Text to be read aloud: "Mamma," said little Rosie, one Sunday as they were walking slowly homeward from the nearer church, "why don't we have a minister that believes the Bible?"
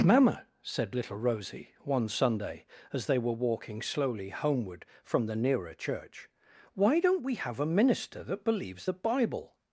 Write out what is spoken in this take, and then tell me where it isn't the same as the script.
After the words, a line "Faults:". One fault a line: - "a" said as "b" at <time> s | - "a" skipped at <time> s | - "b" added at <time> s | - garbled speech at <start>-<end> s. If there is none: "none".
"Mamma," said little Rosie, one Sunday as they were walking slowly homeward from the nearer church, "why don't we have a minister that believes the Bible?"
Faults:
none